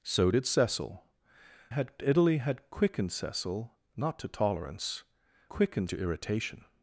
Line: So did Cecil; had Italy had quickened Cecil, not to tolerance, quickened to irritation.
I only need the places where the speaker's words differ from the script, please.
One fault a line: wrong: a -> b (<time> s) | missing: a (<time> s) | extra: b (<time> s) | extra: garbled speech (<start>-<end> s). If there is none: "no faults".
no faults